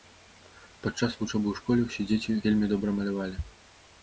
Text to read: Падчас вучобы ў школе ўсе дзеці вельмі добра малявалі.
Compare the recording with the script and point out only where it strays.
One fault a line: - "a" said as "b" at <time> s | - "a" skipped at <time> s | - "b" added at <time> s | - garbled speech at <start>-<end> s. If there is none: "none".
none